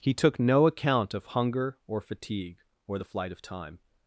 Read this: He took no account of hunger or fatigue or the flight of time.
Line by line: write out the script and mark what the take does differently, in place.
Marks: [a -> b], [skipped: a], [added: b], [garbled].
He took no account of hunger or fatigue or the flight of time.